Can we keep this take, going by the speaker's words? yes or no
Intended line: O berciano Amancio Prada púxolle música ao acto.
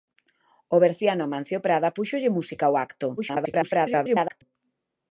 no